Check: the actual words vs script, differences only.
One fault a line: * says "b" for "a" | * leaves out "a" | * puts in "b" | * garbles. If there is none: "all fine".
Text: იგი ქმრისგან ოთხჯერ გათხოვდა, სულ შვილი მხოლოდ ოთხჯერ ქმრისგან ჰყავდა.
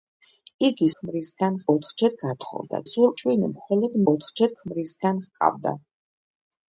all fine